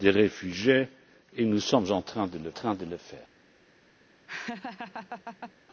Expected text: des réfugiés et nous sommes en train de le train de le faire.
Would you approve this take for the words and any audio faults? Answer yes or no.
no